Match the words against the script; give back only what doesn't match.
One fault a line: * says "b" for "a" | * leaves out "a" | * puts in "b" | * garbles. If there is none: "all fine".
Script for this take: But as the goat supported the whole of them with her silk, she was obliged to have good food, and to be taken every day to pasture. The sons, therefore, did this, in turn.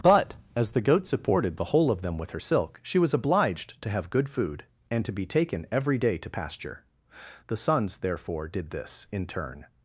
all fine